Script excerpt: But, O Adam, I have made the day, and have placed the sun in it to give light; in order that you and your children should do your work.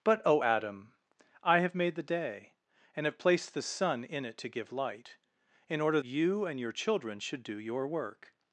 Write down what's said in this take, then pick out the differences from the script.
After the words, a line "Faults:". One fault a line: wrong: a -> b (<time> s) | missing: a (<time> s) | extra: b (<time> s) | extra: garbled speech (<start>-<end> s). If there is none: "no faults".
But, O Adam, I have made the day, and have placed the sun in it to give light; in order you and your children should do your work.
Faults:
missing: that (6.0 s)